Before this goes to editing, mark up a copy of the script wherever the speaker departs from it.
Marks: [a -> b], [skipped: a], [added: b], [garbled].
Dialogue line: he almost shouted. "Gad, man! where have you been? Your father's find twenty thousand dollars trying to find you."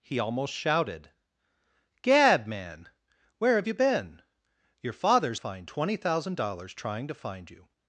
he almost shouted. "Gad, man! where have you been? Your father's find twenty thousand dollars trying to find you."